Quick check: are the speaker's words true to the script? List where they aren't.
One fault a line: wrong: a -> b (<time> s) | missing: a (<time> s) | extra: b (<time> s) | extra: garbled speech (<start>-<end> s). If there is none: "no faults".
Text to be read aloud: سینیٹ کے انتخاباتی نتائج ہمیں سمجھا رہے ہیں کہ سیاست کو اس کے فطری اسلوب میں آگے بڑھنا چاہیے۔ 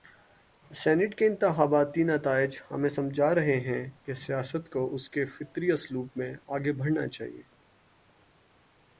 no faults